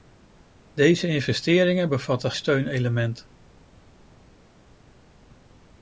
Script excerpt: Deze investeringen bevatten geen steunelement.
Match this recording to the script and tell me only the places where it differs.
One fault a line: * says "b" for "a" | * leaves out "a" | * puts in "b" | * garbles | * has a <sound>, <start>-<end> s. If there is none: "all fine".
* leaves out "geen"